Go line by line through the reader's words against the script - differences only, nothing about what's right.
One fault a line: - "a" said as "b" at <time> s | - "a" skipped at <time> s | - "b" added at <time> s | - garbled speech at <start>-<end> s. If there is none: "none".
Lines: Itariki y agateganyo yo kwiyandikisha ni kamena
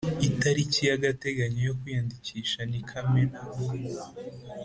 none